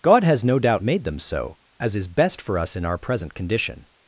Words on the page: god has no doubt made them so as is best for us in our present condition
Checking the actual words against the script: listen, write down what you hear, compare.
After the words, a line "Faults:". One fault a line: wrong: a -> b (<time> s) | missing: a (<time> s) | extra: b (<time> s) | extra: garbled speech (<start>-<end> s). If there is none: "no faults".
god has no doubt made them so as is best for us in our present condition
Faults:
no faults